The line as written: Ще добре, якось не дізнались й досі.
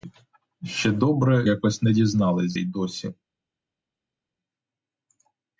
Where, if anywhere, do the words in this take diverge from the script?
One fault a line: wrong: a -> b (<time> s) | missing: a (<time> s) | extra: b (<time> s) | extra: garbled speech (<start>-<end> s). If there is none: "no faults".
no faults